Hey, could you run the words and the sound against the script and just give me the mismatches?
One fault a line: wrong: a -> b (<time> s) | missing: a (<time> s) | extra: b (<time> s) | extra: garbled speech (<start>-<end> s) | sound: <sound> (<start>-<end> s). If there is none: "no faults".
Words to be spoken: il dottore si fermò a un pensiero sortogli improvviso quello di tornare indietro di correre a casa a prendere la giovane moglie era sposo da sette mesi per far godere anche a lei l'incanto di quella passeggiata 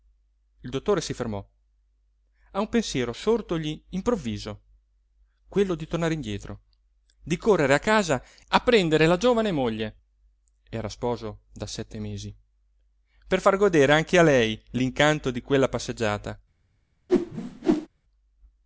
sound: whoosh (17.1-17.9 s)